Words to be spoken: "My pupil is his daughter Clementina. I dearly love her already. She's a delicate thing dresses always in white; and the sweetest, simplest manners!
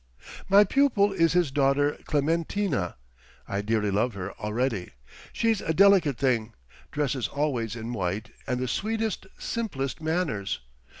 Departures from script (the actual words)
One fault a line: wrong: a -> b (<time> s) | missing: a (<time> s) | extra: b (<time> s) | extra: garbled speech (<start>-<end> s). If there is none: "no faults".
no faults